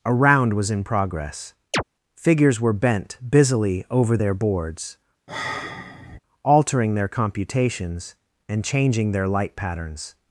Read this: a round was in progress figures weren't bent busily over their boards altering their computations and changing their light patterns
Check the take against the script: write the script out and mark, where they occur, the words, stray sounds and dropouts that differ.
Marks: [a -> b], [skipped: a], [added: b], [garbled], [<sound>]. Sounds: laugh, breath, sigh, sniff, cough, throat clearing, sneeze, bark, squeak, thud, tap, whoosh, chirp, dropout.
a round was in progress [chirp] figures [weren't -> were] bent busily over their boards [sigh] altering their computations and changing their light patterns